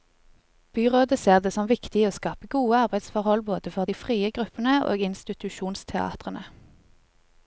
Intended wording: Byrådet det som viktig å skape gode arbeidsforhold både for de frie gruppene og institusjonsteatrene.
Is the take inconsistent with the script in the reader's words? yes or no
yes